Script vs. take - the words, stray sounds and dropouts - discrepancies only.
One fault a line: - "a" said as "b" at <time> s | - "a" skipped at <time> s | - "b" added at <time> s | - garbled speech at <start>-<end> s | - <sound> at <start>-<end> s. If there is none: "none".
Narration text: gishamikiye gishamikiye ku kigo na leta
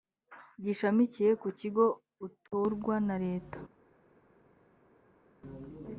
- "gishamikiye" skipped at 1.3 s
- "utorwa" added at 2.3 s